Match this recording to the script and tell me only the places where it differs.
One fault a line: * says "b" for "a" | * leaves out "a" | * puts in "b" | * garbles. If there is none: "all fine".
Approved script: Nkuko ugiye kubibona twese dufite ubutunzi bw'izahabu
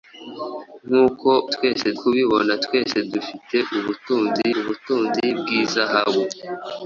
* says "twese" for "ugiye"
* puts in "ubutunzi"